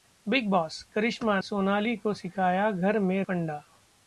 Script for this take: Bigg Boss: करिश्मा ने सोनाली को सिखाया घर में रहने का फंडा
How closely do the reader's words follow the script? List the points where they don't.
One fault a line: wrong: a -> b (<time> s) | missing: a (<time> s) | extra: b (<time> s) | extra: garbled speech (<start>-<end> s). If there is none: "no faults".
missing: ने (1.4 s)
missing: रहने का (3.2 s)